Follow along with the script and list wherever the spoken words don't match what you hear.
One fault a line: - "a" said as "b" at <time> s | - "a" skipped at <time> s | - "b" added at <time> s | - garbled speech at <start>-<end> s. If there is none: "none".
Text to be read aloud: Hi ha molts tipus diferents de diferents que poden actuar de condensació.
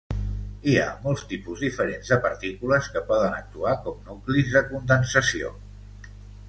- "diferents" said as "partícules" at 2.3 s
- "com nuclis" added at 3.9 s